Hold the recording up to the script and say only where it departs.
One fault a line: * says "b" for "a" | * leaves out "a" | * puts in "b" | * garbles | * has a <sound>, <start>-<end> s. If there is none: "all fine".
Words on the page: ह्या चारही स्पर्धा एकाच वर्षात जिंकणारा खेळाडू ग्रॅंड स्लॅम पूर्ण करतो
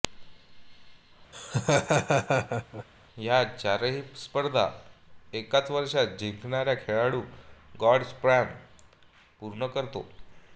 * has a laugh, 1.3-2.9 s